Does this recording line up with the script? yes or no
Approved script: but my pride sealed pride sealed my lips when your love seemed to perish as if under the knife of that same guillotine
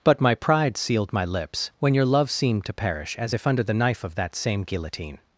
no